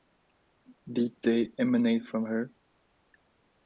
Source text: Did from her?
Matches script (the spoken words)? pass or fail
fail